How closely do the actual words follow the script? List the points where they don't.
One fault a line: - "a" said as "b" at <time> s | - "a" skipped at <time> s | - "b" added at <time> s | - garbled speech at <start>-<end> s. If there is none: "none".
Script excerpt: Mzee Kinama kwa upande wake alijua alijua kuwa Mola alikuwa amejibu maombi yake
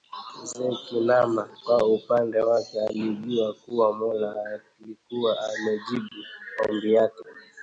- "alijua" skipped at 3.5 s